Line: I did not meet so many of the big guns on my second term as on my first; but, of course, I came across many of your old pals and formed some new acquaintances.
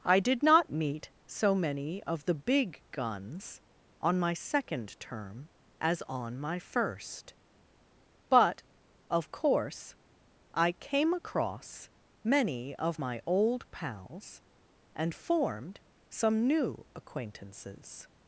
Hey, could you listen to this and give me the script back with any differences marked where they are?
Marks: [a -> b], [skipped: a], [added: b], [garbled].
I did not meet so many of the big guns on my second term as on my first; but, of course, I came across many of [your -> my] old pals and formed some new acquaintances.